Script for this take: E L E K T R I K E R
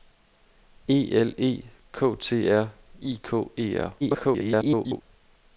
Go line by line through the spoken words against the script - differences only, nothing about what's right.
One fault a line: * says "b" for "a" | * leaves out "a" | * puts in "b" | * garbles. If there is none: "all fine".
* garbles